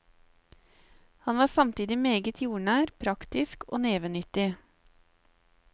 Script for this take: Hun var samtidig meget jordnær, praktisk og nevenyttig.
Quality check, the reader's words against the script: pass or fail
fail